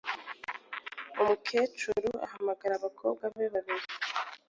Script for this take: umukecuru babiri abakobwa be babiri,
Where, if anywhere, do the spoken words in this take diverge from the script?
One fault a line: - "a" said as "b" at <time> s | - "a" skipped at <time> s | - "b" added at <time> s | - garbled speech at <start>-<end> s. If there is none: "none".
- "babiri" said as "ahamagara" at 2.2 s